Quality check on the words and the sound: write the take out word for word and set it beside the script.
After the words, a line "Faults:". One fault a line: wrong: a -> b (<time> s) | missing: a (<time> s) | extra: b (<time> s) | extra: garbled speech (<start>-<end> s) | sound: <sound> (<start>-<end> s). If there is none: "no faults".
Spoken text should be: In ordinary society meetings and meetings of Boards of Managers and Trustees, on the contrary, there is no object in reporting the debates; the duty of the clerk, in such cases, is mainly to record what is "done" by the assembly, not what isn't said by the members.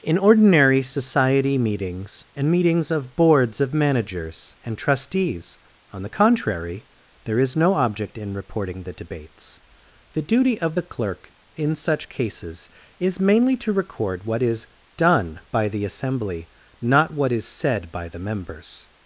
In ordinary society meetings and meetings of Boards of Managers and Trustees, on the contrary, there is no object in reporting the debates; the duty of the clerk, in such cases, is mainly to record what is "done" by the assembly, not what is said by the members.
Faults:
wrong: isn't -> is (17.3 s)